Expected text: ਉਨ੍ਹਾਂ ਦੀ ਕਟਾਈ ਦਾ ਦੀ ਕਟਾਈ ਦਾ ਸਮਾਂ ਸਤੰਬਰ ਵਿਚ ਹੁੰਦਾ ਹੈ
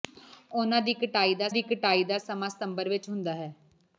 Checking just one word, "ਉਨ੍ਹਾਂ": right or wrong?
right